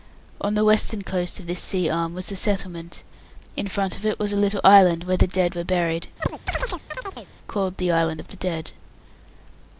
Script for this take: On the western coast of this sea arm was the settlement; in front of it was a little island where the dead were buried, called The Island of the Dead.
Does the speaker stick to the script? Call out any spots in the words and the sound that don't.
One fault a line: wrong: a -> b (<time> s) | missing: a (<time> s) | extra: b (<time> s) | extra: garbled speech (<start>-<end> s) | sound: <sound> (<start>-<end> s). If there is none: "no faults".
sound: chirp (6.2-7.3 s)